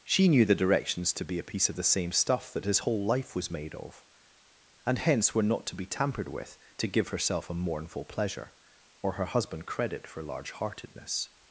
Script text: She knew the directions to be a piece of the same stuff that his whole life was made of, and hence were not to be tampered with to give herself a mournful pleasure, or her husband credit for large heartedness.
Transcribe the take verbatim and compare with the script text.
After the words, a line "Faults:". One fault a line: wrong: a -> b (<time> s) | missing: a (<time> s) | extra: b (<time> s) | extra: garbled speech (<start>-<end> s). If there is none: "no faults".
She knew the directions to be a piece of the same stuff that his whole life was made of, and hence were not to be tampered with to give herself a mournful pleasure, or her husband credit for large heartedness.
Faults:
no faults